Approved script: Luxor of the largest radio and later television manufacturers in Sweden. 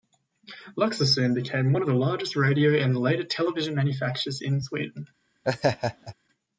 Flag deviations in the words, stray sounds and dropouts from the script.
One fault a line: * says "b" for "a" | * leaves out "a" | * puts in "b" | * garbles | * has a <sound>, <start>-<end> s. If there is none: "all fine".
* puts in "soon became one"
* has a laugh, 5.4-6.1 s